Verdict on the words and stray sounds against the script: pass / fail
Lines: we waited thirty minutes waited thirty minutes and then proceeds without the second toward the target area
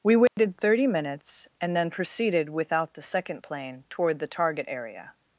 fail